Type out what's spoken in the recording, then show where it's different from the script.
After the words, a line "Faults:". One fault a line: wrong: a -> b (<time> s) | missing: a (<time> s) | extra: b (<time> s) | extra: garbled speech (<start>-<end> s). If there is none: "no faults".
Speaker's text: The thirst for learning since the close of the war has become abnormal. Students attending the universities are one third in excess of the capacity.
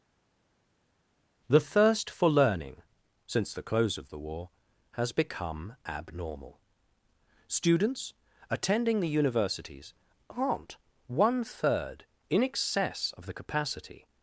The thirst for learning since the close of the war has become abnormal. Students attending the universities aren't one third in excess of the capacity.
Faults:
wrong: are -> aren't (10.3 s)